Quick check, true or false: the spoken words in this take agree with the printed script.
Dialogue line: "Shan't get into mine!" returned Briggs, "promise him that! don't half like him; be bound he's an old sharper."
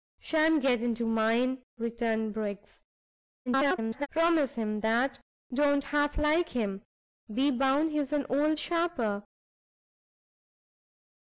false